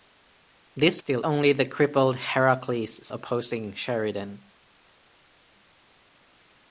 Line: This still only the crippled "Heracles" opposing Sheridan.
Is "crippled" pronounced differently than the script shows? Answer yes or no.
no